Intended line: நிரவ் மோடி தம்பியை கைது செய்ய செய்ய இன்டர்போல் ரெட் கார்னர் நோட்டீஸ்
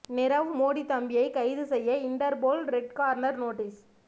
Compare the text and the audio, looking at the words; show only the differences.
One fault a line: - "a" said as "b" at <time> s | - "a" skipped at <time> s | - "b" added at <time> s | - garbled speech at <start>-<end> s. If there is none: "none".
- "செய்ய" skipped at 2.0 s